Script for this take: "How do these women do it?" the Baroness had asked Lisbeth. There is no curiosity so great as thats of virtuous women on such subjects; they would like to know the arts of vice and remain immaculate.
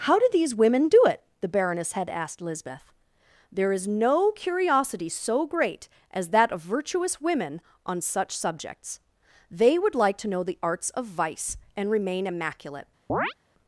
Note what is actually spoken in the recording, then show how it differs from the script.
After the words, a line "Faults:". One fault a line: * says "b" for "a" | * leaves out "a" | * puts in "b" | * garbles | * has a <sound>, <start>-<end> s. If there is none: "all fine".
"How do these women do it?" the Baroness had asked Lisbeth. There is no curiosity so great as that of virtuous women on such subjects; they would like to know the arts of vice and remain immaculate.
Faults:
* says "that" for "thats"
* has a chirp, 13.1-13.3 s